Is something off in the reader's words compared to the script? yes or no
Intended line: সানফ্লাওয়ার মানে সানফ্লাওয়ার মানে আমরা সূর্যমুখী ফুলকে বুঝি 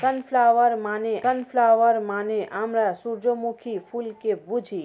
no